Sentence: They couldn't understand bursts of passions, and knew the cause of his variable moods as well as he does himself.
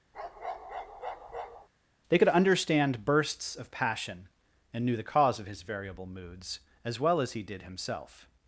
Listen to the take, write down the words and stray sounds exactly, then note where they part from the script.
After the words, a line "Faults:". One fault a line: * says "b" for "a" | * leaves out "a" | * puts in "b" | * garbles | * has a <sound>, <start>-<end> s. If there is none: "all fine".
They could understand bursts of passion, and knew the cause of his variable moods as well as he did himself.
Faults:
* has a bark, 0.1-1.7 s
* says "could" for "couldn't"
* says "passion" for "passions"
* says "did" for "does"